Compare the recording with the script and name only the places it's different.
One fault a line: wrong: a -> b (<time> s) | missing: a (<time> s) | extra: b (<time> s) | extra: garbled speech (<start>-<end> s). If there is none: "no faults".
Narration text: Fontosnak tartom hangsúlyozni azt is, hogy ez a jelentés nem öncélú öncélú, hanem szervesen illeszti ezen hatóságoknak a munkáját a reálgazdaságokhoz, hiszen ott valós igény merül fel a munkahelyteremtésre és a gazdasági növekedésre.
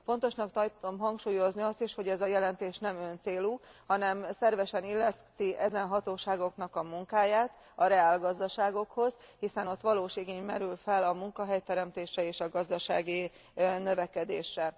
missing: öncélú (3.6 s)